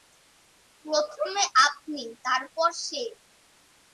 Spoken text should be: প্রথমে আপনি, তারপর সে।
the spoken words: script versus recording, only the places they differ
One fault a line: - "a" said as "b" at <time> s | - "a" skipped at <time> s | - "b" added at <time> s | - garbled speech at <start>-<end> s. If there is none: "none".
none